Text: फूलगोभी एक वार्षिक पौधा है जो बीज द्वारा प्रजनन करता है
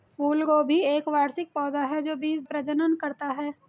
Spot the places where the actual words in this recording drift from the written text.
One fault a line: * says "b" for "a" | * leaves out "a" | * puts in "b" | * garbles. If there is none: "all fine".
* leaves out "द्वारा"